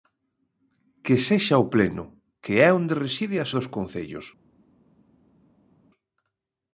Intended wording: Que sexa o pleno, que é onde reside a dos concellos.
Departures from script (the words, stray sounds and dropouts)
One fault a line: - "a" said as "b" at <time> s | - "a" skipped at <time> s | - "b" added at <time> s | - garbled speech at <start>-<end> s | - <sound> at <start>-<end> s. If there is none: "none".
none